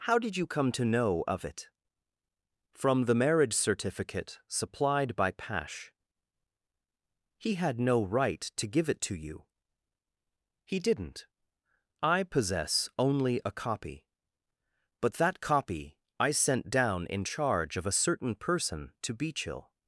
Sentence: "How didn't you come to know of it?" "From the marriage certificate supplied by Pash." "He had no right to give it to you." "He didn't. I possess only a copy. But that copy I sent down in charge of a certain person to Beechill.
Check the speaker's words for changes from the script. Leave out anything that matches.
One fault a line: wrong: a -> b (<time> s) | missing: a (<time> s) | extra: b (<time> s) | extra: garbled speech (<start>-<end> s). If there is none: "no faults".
wrong: didn't -> did (0.2 s)